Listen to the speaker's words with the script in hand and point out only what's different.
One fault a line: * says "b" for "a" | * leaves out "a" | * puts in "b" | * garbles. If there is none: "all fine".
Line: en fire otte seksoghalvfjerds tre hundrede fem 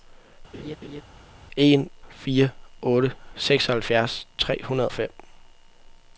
all fine